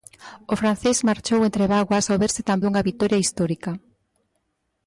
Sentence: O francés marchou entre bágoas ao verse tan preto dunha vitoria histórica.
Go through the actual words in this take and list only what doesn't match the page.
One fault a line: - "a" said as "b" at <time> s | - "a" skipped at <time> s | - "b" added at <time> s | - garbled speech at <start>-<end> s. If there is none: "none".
- "preto" skipped at 2.6 s